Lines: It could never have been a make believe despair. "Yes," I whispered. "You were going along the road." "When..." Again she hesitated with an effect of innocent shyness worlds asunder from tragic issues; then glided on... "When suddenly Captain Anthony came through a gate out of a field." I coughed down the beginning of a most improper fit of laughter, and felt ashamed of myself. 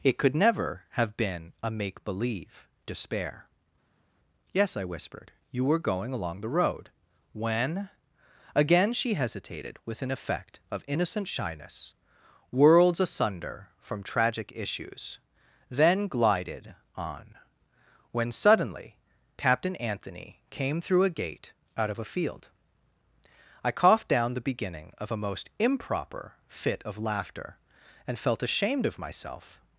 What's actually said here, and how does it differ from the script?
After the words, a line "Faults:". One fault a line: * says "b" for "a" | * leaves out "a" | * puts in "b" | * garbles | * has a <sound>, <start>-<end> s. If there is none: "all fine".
It could never have been a make believe despair. "Yes," I whispered. "You were going along the road." "When..." Again she hesitated with an effect of innocent shyness worlds asunder from tragic issues; then glided on... "When suddenly Captain Anthony came through a gate out of a field." I coughed down the beginning of a most improper fit of laughter, and felt ashamed of myself.
Faults:
all fine